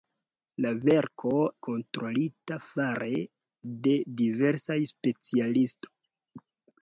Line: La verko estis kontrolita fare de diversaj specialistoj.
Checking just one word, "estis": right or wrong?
wrong